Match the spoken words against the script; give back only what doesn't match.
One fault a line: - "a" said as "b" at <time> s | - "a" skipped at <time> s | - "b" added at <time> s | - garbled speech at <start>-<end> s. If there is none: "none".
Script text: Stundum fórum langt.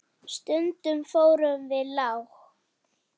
- "við" added at 1.7 s